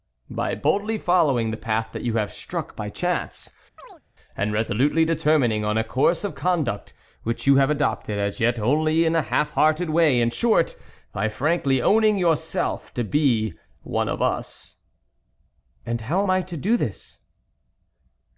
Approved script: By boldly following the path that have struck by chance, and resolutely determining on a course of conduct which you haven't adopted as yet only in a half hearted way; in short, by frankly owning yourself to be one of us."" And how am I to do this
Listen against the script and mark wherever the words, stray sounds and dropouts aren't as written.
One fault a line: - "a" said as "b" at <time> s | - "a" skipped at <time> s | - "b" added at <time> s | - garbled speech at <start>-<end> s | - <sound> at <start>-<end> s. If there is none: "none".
- "you" added at 2.0 s
- chirp at 3.8-4.0 s
- "haven't" said as "have" at 7.6 s